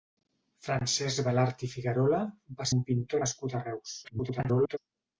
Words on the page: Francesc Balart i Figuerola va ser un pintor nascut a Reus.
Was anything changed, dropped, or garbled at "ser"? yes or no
yes